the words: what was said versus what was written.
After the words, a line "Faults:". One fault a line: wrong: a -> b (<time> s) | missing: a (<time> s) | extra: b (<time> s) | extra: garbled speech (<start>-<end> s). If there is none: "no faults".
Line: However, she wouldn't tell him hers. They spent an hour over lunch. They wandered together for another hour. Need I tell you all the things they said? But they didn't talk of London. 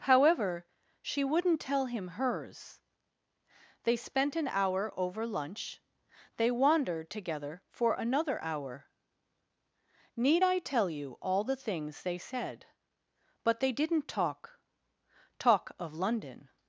However, she wouldn't tell him hers. They spent an hour over lunch. They wandered together for another hour. Need I tell you all the things they said? But they didn't talk talk of London.
Faults:
extra: talk (15.4 s)